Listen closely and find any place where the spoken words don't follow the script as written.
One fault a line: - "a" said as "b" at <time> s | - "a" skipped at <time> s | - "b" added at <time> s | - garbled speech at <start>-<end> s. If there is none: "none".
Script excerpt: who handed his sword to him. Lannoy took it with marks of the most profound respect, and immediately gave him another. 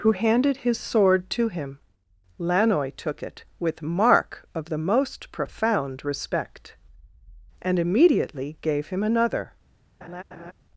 - "marks" said as "mark" at 3.8 s